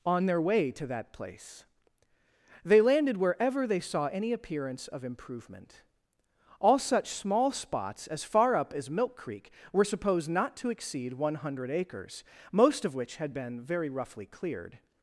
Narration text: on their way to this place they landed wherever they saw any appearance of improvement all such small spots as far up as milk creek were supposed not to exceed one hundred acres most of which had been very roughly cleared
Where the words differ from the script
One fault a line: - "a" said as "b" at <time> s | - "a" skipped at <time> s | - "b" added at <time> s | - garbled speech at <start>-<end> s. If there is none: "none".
- "this" said as "that" at 0.9 s